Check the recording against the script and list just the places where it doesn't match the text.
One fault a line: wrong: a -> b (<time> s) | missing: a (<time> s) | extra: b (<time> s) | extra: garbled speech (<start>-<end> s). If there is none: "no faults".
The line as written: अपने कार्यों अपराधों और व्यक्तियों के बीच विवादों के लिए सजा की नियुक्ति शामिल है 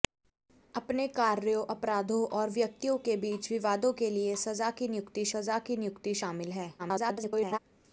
extra: सजा की नियुक्ति (5.3 s)
extra: garbled speech (6.8-7.6 s)